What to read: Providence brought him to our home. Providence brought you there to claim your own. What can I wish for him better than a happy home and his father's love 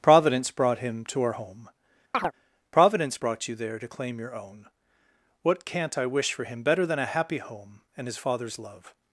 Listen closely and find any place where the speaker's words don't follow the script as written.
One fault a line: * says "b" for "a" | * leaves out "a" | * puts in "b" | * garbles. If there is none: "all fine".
* says "can't" for "can"